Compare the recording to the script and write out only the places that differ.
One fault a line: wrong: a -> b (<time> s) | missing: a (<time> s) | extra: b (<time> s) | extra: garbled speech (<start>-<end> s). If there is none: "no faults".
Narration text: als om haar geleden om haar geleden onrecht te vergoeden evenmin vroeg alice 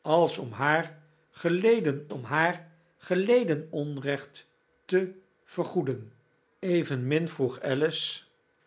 no faults